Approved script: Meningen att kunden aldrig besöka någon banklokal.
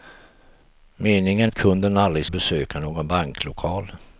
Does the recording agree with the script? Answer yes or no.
yes